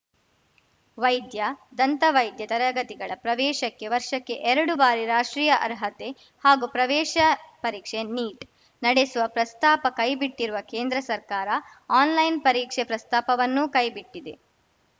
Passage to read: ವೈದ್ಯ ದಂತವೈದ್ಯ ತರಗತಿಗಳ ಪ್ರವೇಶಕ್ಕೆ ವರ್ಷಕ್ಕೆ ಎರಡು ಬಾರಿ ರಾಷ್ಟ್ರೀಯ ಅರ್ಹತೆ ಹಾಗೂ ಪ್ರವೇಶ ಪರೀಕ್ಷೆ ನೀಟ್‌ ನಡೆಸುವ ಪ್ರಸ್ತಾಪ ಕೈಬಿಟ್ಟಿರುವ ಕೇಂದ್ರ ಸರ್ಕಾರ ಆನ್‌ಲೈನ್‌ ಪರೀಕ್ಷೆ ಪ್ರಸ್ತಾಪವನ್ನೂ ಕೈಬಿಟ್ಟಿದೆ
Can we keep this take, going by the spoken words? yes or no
yes